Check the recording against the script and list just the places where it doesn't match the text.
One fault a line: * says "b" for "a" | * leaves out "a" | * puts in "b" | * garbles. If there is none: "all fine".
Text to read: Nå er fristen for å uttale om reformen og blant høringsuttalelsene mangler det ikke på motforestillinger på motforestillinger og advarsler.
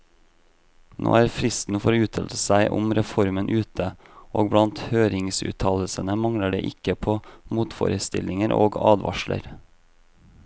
* puts in "seg"
* puts in "ute"
* leaves out "på motforestillinger"